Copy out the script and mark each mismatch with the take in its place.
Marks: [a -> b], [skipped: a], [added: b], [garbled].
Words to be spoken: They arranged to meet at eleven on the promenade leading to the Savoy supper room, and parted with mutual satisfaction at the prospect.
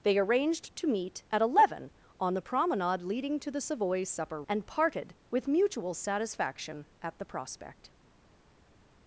They arranged to meet at eleven on the promenade leading to the Savoy supper [skipped: room,] and parted with mutual satisfaction at the prospect.